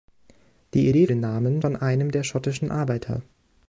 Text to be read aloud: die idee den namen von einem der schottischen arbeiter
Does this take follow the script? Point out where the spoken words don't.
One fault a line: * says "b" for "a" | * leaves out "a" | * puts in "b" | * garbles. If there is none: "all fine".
all fine